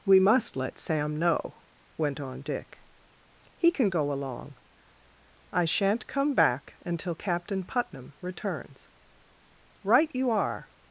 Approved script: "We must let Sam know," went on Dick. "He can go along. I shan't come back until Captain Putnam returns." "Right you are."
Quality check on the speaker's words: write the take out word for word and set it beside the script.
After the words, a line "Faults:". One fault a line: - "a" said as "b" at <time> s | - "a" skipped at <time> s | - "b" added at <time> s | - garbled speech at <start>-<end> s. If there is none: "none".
"We must let Sam know," went on Dick. "He can go along. I shan't come back until Captain Putnam returns." "Right you are."
Faults:
none